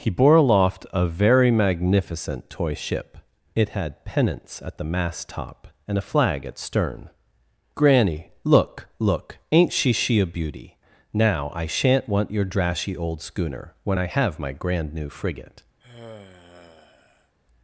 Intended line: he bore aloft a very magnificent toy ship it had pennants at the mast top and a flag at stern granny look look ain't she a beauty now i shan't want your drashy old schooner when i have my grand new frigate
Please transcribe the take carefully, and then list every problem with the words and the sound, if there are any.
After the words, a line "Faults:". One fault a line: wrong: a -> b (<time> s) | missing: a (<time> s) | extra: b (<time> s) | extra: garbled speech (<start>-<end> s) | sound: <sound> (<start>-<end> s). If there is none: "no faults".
he bore aloft a very magnificent toy ship it had pennants at the mast top and a flag at stern granny look look ain't she she a beauty now i shan't want your drashy old schooner when i have my grand new frigate
Faults:
extra: she (9.9 s)
sound: sigh (15.8-17.3 s)